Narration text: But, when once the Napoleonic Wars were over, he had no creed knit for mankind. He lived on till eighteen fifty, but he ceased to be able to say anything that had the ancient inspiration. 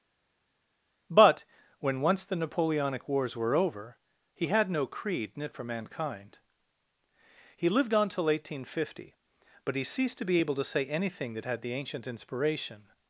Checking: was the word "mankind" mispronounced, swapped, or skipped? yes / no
no